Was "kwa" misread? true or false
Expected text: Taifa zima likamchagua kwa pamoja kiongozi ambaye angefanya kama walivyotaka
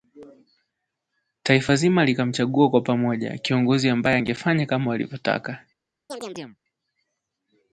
false